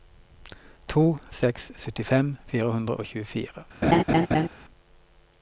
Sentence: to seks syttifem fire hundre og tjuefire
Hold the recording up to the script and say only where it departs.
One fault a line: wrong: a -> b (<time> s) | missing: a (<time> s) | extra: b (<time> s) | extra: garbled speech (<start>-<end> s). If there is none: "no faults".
no faults